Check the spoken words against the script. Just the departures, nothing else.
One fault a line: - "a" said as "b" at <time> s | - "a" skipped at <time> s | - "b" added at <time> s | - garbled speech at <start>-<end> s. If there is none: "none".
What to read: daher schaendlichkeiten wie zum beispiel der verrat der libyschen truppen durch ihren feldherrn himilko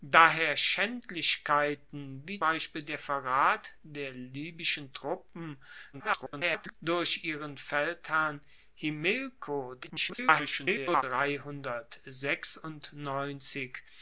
- "zum" skipped at 2.4 s
- garbled speech at 5.9-6.8 s
- garbled speech at 9.8-11.0 s